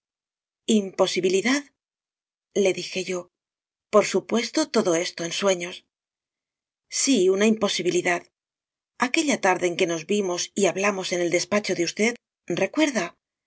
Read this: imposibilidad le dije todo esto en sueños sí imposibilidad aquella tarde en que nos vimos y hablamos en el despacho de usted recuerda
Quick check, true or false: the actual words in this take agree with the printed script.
false